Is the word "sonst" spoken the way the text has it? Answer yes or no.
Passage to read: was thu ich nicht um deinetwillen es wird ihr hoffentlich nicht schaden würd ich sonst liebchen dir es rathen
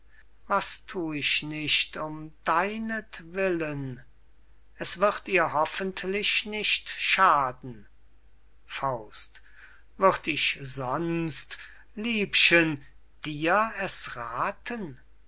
yes